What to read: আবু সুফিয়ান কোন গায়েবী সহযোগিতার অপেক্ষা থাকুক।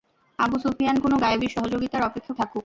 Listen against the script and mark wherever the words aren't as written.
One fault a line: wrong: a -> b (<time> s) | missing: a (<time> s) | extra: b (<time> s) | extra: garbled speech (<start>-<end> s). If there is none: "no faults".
no faults